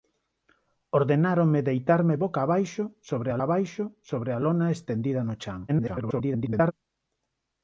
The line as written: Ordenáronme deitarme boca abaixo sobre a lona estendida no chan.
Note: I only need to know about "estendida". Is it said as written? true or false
true